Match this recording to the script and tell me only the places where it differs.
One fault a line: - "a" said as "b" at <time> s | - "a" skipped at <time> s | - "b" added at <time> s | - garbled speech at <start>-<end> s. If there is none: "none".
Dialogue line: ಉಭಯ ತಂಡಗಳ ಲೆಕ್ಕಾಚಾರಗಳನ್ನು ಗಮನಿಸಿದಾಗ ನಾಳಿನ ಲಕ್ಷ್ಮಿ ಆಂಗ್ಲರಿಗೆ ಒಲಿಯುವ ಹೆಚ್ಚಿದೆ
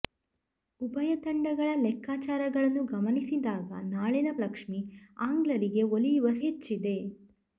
none